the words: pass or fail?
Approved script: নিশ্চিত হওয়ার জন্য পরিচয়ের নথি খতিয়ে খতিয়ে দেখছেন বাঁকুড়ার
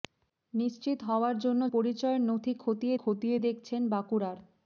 pass